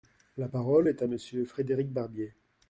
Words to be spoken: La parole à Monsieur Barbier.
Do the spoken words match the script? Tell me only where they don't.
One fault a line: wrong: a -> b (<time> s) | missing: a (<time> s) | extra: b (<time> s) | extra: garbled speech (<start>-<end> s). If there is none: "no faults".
extra: est (0.9 s)
extra: Frédéric (1.5 s)